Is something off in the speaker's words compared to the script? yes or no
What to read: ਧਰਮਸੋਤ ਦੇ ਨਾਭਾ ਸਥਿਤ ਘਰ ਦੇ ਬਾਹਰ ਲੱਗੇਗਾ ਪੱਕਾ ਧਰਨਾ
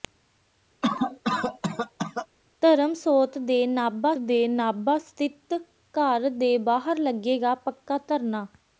yes